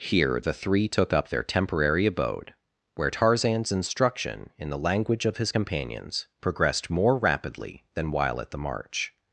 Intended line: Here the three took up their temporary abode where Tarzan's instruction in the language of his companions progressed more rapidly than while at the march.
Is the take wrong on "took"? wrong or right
right